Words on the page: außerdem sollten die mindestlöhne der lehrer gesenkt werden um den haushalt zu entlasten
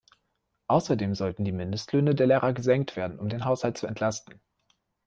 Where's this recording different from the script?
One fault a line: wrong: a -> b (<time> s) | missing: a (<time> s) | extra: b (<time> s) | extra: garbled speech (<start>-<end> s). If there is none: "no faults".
no faults